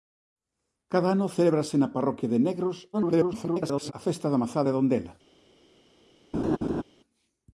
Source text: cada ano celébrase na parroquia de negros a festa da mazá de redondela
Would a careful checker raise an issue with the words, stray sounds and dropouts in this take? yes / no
yes